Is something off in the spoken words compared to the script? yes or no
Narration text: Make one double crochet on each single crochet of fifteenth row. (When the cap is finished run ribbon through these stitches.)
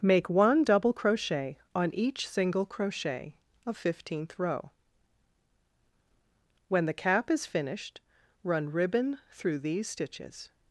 no